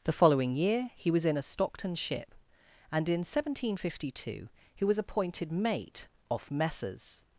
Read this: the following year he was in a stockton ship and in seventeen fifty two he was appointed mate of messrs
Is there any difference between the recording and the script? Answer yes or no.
yes